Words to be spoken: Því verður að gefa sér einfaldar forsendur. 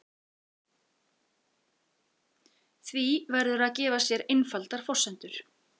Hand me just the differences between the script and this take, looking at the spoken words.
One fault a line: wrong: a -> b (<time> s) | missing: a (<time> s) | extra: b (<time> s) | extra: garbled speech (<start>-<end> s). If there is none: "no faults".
no faults